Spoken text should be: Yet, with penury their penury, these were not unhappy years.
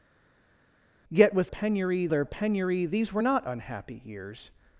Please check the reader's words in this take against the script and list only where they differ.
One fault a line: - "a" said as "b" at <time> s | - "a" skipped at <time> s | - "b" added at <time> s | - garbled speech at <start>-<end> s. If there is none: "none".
none